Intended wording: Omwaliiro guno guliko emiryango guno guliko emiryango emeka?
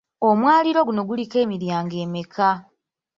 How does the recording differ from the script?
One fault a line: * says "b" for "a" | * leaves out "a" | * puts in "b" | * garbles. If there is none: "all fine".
* leaves out "guno guliko emiryango"